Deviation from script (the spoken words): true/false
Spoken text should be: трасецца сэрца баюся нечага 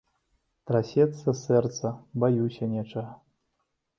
false